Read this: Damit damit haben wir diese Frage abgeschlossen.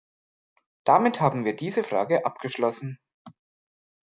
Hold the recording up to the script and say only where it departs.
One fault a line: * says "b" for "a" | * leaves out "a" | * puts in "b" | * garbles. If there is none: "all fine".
* leaves out "damit"